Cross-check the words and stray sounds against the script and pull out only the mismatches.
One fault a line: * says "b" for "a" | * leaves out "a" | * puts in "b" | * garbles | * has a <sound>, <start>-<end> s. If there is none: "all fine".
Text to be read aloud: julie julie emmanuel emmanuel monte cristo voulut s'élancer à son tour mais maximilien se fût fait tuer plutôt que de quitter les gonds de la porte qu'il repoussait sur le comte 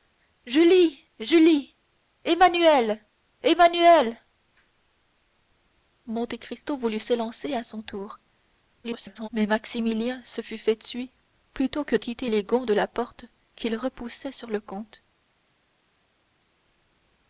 * garbles
* leaves out "de"